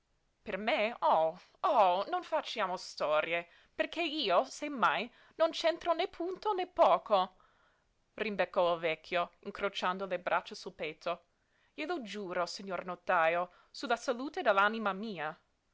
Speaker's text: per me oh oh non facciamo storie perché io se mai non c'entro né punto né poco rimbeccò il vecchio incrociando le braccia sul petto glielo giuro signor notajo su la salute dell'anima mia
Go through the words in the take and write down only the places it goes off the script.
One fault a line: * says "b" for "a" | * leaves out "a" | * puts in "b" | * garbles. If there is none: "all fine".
all fine